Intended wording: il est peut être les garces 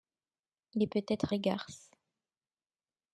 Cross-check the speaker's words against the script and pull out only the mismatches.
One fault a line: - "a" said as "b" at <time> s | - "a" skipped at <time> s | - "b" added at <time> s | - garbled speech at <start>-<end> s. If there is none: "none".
none